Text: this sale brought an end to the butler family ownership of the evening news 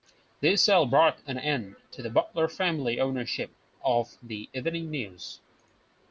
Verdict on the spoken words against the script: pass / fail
pass